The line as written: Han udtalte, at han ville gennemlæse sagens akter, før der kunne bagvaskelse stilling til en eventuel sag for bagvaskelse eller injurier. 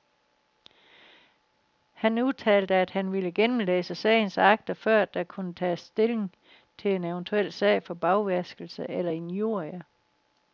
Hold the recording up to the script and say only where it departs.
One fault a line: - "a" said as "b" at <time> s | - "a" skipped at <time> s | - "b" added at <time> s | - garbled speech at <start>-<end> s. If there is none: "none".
- "bagvaskelse" said as "tages" at 5.5 s